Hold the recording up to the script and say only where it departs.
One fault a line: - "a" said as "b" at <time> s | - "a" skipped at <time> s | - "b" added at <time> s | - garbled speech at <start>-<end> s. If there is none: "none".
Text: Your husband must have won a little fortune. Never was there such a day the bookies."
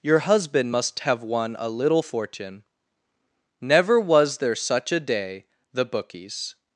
none